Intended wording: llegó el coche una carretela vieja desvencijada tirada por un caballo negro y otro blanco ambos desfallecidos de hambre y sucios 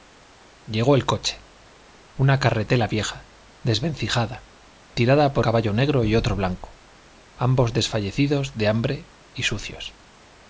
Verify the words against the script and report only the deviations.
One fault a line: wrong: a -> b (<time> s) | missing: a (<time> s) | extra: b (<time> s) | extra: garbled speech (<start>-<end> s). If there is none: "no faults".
missing: un (5.5 s)